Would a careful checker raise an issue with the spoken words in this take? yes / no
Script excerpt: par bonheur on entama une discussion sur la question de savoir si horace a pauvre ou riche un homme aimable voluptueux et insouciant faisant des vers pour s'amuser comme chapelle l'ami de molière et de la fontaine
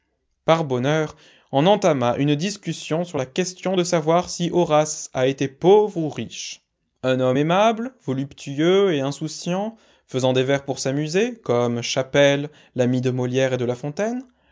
yes